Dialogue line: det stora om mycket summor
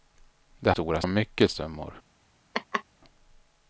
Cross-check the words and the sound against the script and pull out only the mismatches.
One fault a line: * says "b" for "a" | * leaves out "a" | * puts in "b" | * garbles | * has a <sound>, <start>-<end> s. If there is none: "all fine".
* has a laugh, 2.5-2.8 s